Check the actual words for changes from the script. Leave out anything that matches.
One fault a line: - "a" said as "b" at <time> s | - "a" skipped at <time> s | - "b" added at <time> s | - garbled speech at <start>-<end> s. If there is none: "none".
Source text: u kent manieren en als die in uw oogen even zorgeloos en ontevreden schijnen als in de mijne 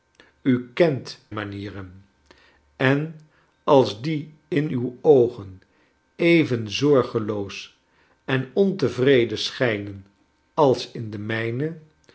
none